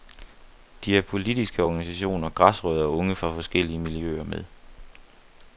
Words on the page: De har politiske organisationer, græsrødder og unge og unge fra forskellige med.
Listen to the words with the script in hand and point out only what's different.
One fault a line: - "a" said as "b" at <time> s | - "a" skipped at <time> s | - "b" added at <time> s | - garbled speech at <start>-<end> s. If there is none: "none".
- "og unge" skipped at 3.1 s
- "miljøer" added at 3.8 s